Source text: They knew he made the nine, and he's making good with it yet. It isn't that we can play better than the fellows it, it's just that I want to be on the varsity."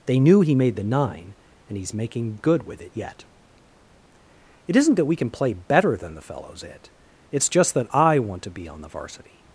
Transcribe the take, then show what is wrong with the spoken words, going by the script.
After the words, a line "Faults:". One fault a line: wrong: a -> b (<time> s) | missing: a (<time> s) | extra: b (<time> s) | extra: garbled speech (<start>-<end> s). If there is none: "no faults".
They knew he made the nine, and he's making good with it yet. It isn't that we can play better than the fellows it, it's just that I want to be on the varsity."
Faults:
no faults